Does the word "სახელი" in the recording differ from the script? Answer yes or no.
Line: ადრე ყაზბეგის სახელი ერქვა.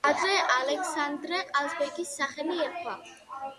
no